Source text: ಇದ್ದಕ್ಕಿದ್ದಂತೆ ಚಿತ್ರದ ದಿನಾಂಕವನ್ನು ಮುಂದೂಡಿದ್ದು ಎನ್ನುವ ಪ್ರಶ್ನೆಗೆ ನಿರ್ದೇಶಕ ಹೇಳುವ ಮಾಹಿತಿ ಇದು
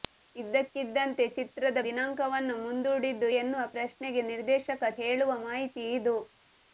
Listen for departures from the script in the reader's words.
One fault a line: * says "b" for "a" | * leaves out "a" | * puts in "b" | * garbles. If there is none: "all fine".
all fine